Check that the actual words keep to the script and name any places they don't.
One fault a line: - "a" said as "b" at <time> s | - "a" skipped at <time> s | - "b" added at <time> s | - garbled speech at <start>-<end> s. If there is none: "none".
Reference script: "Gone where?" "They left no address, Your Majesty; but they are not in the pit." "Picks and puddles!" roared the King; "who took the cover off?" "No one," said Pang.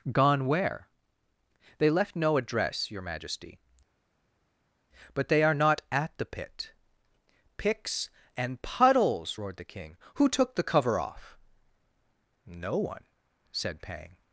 - "in" said as "at" at 5.9 s